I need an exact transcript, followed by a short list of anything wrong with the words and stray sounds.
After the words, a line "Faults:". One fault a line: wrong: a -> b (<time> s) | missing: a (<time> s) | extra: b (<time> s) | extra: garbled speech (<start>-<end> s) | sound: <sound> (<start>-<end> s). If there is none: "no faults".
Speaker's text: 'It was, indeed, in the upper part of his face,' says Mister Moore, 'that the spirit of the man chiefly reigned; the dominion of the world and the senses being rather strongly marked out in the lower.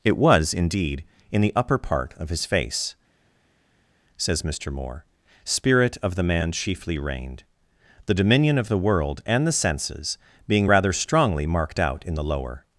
'It was, indeed, in the upper part of his face,' says Mister Moore, 'spirit of the man chiefly reigned; the dominion of the world and the senses being rather strongly marked out in the lower.
Faults:
missing: that the (5.0 s)